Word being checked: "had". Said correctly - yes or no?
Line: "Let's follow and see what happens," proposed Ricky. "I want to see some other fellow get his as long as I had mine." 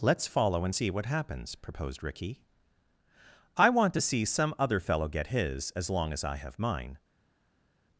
no